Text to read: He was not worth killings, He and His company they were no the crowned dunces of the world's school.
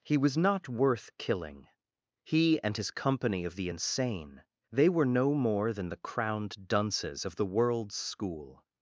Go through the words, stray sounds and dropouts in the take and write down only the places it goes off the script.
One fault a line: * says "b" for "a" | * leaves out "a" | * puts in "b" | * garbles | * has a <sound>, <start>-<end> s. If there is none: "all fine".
* says "killing" for "killings"
* puts in "of the insane"
* puts in "more than"